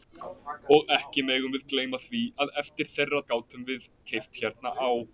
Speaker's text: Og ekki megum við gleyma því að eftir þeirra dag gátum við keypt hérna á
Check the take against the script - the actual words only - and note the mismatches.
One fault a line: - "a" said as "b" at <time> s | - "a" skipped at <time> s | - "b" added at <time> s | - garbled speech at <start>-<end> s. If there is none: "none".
- "dag" skipped at 3.2 s